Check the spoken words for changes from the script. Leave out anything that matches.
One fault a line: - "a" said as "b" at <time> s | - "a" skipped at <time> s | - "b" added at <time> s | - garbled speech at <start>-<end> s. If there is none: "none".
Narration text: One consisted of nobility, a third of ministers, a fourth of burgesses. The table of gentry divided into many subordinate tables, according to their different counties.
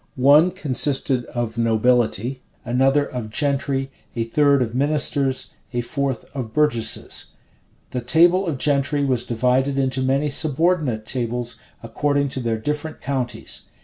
- "another of gentry" added at 2.6 s
- "was" added at 9.0 s